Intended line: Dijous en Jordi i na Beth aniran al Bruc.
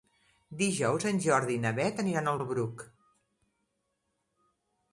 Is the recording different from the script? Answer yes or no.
yes